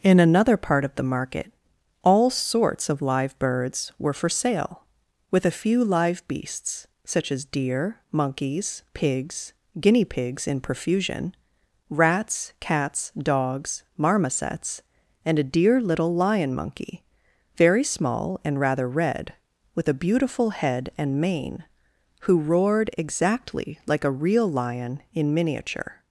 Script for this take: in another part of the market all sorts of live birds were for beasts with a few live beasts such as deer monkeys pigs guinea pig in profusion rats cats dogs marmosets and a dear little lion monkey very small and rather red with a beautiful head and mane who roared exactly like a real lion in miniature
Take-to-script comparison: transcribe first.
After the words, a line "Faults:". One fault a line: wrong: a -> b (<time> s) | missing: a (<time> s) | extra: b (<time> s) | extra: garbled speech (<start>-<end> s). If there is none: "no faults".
in another part of the market all sorts of live birds were for sale with a few live beasts such as deer monkeys pigs guinea pigs in profusion rats cats dogs marmosets and a dear little lion monkey very small and rather red with a beautiful head and mane who roared exactly like a real lion in miniature
Faults:
wrong: beasts -> sale (4.3 s)
wrong: pig -> pigs (10.1 s)